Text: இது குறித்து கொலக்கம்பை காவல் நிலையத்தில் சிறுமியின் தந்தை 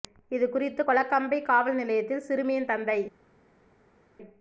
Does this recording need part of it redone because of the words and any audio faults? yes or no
no